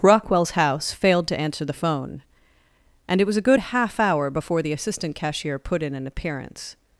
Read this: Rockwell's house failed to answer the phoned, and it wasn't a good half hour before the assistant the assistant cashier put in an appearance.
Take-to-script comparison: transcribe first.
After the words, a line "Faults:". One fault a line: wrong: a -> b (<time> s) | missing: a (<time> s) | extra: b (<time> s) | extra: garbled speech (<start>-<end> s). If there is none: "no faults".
Rockwell's house failed to answer the phone, and it was a good half hour before the assistant cashier put in an appearance.
Faults:
wrong: phoned -> phone (1.7 s)
wrong: wasn't -> was (3.3 s)
missing: the assistant (5.2 s)